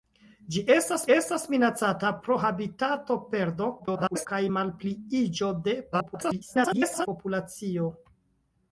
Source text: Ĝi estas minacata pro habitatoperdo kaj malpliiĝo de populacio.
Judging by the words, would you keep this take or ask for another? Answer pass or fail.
fail